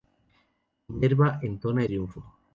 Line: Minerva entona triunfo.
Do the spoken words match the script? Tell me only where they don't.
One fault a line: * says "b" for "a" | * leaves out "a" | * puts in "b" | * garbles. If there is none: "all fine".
all fine